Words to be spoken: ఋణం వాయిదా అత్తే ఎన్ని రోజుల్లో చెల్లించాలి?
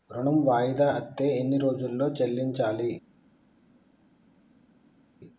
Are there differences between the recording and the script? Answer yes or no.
no